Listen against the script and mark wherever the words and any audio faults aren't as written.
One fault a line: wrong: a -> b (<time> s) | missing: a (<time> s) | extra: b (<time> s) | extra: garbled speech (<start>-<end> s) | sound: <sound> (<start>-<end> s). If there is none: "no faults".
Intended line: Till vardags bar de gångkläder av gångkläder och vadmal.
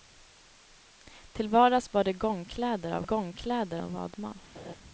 sound: laugh (4.5-4.8 s)